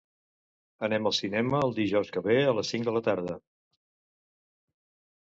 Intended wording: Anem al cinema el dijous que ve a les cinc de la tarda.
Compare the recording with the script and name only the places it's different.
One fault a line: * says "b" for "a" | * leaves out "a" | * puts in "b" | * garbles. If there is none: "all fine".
all fine